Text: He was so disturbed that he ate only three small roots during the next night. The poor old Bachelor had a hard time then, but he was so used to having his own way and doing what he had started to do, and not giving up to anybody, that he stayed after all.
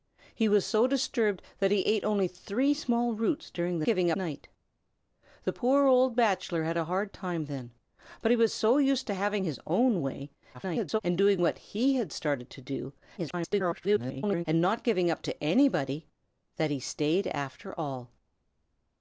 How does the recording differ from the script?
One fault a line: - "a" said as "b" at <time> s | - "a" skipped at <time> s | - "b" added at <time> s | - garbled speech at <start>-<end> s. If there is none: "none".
- "next" said as "giving" at 3.8 s
- garbled speech at 10.5-11.0 s
- garbled speech at 13.2-14.4 s